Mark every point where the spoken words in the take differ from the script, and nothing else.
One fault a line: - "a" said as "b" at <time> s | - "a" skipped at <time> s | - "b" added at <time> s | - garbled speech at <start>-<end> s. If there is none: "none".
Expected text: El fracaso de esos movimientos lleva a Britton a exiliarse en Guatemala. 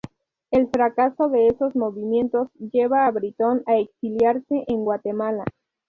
none